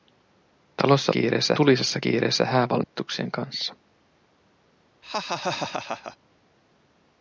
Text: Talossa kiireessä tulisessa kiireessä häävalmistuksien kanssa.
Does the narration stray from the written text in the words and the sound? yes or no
yes